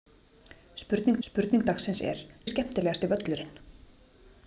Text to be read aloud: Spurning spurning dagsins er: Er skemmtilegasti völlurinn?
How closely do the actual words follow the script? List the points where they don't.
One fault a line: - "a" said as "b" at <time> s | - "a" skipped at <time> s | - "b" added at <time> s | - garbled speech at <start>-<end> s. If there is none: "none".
none